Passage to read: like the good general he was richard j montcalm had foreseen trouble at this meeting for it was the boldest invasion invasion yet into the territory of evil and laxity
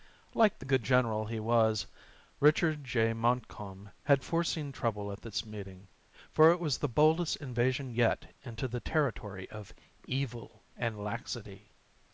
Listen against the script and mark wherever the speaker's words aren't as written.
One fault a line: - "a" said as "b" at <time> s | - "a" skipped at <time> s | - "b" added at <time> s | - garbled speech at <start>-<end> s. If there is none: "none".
- "invasion" skipped at 7.9 s